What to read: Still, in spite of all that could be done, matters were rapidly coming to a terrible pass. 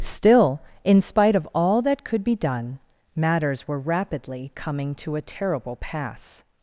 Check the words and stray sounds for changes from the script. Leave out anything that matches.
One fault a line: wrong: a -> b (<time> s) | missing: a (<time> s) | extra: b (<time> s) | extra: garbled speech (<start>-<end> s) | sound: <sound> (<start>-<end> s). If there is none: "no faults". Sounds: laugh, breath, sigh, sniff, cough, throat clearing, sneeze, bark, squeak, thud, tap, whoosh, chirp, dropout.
no faults